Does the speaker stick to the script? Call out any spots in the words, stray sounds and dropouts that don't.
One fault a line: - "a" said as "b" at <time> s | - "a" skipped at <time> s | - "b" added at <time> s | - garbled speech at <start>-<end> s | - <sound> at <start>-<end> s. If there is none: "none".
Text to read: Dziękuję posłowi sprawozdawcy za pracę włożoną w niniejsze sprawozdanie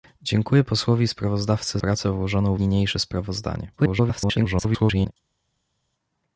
- "za" skipped at 1.8 s
- "w" skipped at 2.6 s
- garbled speech at 3.8-5.1 s